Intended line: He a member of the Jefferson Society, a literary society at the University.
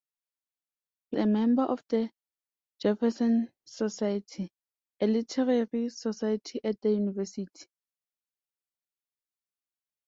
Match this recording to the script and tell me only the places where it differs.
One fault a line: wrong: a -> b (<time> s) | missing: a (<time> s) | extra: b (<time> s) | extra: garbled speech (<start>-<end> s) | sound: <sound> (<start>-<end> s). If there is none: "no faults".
no faults